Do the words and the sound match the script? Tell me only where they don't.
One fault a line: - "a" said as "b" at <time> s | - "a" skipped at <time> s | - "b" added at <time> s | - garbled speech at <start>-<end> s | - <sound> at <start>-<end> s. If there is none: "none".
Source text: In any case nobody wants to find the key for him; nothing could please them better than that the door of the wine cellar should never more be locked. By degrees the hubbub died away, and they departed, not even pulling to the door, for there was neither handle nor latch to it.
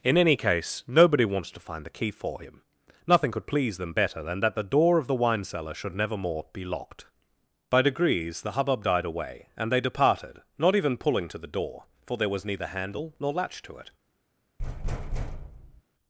- thud at 14.6-15.8 s